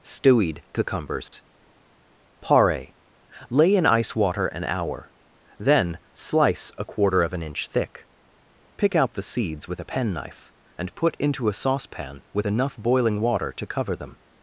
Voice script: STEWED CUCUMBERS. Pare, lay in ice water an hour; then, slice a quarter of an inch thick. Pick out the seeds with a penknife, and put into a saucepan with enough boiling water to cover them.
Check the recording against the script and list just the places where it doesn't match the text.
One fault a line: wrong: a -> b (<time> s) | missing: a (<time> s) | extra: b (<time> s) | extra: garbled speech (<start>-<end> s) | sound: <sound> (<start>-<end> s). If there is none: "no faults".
sound: dropout (1.3-1.3 s)